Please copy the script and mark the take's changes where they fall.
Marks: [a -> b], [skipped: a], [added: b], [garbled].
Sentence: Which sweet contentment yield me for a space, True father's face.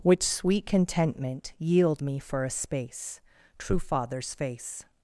Which sweet contentment yield me for a space, True father's face.